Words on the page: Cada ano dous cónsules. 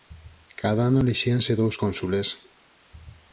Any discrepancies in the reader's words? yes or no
yes